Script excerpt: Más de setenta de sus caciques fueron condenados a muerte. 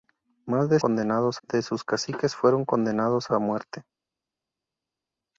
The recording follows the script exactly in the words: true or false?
false